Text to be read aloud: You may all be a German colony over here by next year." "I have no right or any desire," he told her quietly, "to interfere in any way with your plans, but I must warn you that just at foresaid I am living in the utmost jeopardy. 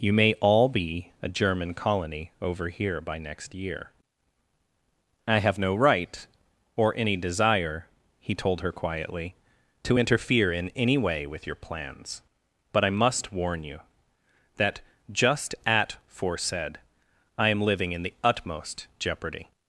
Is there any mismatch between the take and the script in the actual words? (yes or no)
no